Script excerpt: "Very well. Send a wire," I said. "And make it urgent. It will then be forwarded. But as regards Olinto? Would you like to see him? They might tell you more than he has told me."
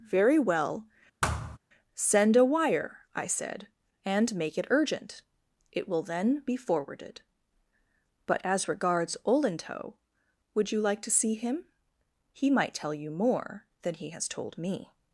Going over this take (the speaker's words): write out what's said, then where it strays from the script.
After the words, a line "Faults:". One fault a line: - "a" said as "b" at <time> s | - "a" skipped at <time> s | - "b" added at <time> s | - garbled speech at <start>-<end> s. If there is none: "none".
"Very well. Send a wire," I said. "And make it urgent. It will then be forwarded. But as regards Olinto? Would you like to see him? He might tell you more than he has told me."
Faults:
- "They" said as "He" at 12.3 s